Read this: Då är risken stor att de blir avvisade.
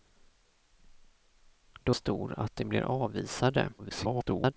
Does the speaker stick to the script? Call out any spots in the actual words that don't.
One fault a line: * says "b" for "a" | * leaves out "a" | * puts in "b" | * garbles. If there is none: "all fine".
* leaves out "är risken"
* garbles